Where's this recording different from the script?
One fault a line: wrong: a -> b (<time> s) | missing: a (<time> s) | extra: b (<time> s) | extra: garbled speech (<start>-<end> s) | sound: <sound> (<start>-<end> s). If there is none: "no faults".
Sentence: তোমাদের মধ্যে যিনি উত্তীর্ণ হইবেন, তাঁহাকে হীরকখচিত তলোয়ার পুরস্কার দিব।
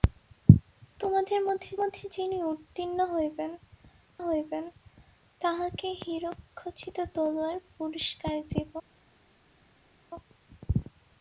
extra: মধ্যে (1.8 s)
extra: হইবেন (4.2 s)